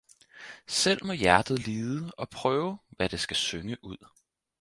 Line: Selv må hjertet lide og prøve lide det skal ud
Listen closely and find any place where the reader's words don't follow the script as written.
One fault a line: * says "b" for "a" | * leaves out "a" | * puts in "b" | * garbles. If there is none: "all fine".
* says "hvad" for "lide"
* puts in "synge"